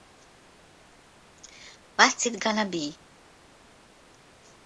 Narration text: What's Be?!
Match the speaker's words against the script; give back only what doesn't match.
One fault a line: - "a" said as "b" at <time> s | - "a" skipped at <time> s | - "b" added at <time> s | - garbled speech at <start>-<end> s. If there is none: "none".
- "It Gonna" added at 2.3 s